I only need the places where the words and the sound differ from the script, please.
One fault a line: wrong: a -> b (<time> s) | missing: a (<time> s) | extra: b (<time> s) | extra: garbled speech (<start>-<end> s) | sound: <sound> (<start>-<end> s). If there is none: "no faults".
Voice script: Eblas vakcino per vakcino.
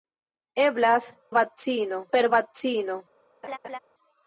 sound: laugh (3.4-3.8 s)